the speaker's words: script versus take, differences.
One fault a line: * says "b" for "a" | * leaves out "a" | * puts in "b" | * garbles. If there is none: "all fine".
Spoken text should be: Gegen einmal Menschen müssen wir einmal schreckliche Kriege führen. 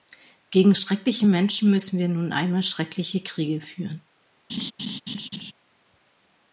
* says "schreckliche" for "einmal"
* puts in "nun"